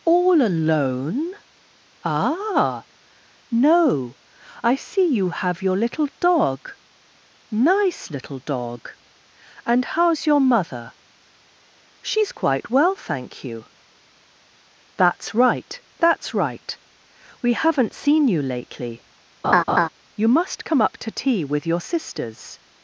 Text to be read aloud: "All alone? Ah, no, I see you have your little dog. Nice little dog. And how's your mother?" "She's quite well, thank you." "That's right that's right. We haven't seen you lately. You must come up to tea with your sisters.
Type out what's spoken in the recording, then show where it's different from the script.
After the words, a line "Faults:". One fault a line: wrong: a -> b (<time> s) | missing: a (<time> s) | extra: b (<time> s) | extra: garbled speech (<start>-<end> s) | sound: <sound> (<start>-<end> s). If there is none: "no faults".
"All alone? Ah, no, I see you have your little dog. Nice little dog. And how's your mother?" "She's quite well, thank you." "That's right that's right. We haven't seen you lately. You must come up to tea with your sisters.
Faults:
sound: laugh (19.4-19.9 s)